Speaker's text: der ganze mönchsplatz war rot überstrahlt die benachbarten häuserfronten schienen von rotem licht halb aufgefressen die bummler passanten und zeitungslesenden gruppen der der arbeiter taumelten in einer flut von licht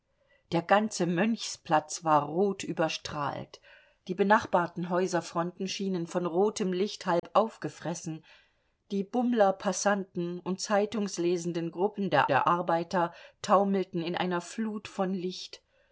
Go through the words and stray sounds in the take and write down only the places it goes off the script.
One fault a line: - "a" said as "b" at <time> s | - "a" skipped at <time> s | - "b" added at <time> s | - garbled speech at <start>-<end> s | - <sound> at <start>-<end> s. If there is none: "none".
- dropout at 7.2-7.2 s